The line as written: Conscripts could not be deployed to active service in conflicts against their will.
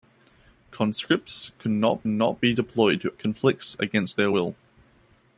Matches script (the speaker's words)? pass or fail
fail